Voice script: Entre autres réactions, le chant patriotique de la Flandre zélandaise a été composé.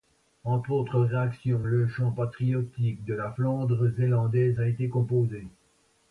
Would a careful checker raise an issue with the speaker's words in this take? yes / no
no